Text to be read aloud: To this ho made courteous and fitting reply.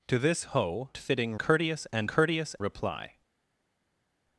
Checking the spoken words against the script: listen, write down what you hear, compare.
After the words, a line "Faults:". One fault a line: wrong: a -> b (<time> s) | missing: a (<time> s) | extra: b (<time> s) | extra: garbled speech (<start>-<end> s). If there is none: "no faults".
To this ho fitting courteous and courteous reply.
Faults:
wrong: made -> fitting (1.0 s)
wrong: fitting -> courteous (2.1 s)